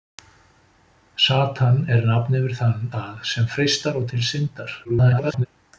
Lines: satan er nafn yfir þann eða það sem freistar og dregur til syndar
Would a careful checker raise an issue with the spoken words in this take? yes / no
yes